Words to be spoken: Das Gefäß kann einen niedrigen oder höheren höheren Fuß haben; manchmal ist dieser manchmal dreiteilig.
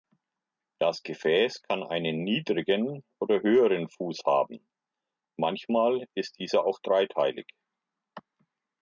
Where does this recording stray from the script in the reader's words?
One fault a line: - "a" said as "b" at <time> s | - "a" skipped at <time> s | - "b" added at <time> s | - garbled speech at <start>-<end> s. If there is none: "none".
- "höheren" skipped at 3.9 s
- "manchmal" said as "auch" at 6.7 s